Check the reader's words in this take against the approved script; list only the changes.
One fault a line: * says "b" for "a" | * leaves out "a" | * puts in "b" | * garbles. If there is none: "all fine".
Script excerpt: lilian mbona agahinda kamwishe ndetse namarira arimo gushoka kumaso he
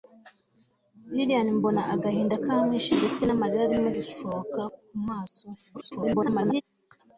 * garbles